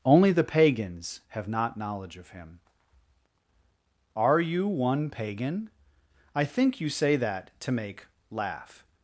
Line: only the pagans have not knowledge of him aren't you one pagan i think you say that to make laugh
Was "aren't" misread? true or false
true